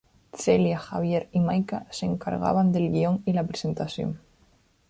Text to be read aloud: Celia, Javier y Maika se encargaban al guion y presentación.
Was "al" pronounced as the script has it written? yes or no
no